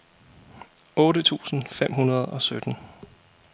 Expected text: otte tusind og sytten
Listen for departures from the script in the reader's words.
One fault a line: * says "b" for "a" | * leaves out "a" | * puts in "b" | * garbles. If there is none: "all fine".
* puts in "fem hundrede"